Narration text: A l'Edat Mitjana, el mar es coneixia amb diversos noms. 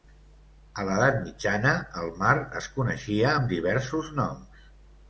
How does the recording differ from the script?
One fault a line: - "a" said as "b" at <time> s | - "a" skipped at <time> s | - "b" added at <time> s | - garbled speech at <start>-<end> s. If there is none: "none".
none